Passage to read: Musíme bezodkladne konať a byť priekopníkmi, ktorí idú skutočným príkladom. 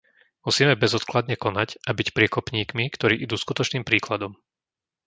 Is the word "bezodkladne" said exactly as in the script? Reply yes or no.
yes